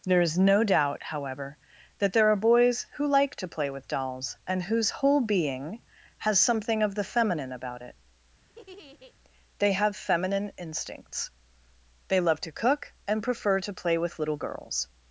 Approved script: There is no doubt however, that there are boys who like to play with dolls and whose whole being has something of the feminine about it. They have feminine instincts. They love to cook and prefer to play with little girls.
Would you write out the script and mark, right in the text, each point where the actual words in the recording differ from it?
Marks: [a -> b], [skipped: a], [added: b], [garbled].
There is no doubt however, that there are boys who like to play with dolls and whose whole being has something of the feminine about it. They have feminine instincts. They love to cook and prefer to play with little girls.